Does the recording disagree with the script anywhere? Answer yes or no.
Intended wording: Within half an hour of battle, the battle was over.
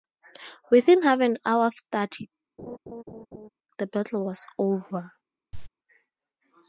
yes